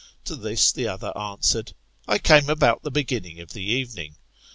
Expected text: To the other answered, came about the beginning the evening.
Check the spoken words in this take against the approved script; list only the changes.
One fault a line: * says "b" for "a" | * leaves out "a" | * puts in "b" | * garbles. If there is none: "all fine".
* puts in "this"
* puts in "I"
* puts in "of"